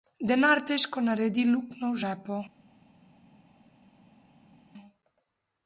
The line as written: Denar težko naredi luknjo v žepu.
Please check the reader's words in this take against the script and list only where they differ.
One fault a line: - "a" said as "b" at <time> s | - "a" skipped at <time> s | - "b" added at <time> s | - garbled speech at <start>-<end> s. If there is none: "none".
none